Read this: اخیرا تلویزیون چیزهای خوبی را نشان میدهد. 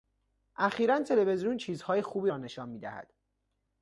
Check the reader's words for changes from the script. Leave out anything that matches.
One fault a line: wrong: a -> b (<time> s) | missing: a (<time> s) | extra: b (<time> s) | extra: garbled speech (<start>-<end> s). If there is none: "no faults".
no faults